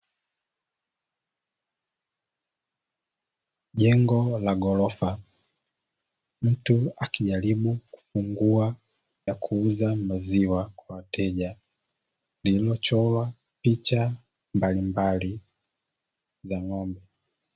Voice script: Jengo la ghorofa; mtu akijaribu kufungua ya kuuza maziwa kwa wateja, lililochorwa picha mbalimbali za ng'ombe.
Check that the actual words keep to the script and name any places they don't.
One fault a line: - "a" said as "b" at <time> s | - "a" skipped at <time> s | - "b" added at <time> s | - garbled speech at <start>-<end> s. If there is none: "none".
none